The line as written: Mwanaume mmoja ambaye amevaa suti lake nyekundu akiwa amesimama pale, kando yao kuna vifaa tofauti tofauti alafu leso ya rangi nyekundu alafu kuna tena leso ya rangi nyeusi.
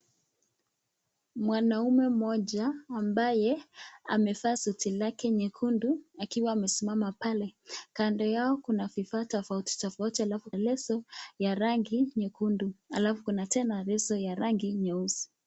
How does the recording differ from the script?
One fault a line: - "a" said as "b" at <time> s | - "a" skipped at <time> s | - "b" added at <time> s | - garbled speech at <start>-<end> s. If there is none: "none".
none